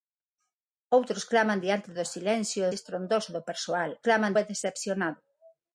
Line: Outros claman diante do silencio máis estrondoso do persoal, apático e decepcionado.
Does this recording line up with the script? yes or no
no